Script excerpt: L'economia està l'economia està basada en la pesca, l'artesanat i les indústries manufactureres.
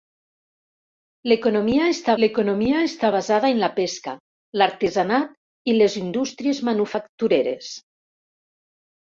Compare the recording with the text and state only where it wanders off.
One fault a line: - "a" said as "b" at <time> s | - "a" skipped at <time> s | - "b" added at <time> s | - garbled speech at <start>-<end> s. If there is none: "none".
none